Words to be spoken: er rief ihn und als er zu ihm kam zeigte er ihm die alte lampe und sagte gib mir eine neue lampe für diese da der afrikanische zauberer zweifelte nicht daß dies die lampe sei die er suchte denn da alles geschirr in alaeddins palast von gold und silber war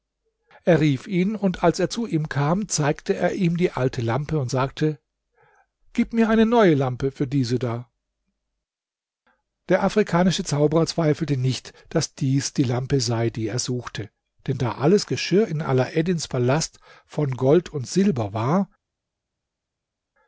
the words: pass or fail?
pass